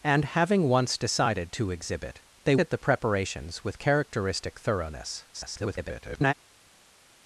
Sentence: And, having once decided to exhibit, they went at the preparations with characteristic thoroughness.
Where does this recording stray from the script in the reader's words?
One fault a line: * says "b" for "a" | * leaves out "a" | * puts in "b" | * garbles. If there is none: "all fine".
* leaves out "went"
* garbles